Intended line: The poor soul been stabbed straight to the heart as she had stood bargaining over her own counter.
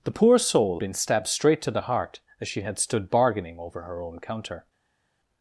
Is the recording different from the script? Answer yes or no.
no